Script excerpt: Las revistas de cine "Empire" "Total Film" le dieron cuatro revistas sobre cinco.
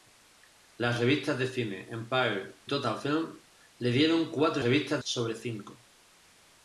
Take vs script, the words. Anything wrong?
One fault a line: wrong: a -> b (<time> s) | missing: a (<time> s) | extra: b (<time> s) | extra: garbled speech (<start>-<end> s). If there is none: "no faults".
no faults